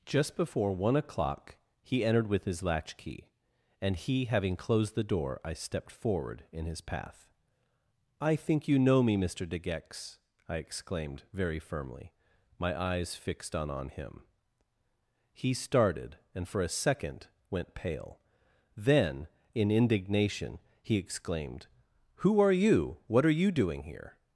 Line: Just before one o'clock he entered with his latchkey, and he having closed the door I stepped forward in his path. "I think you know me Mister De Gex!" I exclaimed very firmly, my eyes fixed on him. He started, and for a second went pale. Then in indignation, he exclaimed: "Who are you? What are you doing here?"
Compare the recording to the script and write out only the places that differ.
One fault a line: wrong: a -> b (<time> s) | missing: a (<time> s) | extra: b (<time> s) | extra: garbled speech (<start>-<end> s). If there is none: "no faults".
extra: on (13.7 s)